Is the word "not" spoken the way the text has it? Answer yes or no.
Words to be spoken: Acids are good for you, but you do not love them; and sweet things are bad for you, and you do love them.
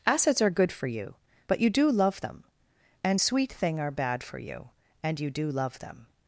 no